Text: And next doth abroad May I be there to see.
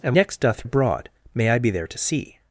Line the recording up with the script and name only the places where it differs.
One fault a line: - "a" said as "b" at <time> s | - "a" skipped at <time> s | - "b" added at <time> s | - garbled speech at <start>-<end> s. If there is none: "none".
none